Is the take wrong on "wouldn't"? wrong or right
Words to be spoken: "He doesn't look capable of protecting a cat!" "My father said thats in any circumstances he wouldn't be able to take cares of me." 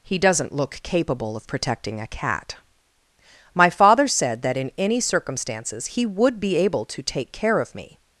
wrong